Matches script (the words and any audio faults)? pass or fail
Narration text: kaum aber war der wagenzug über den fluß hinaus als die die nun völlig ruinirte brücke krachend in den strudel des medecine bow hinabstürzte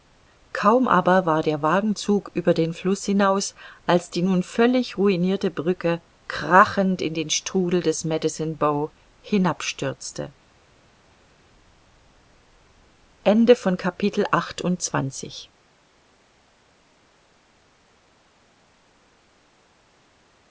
fail